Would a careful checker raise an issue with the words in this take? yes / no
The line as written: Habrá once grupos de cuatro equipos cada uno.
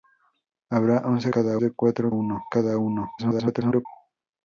yes